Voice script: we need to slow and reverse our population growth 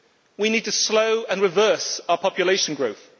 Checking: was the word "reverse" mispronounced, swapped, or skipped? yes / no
no